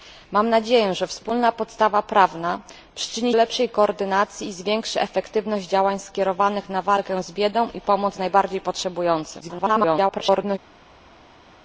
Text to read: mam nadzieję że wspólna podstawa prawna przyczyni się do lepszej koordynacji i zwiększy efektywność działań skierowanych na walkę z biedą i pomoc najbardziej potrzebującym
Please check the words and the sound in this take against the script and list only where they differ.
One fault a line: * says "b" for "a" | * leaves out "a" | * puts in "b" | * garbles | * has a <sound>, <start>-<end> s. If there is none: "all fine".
* leaves out "się do"
* garbles